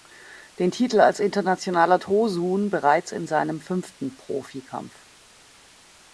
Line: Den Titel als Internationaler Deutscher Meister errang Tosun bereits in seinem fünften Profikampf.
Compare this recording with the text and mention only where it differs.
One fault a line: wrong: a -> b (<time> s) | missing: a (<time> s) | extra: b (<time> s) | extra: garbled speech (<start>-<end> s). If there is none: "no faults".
missing: Deutscher Meister errang (2.0 s)